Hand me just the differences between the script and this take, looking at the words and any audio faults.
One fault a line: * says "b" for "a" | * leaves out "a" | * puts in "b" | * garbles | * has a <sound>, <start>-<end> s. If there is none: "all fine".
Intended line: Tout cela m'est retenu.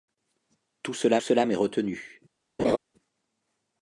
* puts in "cela"
* has a laugh, 2.6-2.8 s